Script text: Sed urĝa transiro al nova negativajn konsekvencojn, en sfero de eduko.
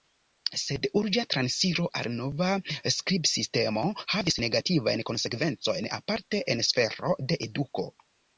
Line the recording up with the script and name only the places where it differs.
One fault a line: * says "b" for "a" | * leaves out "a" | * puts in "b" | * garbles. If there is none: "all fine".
* puts in "skribsistemo havis"
* puts in "aparte"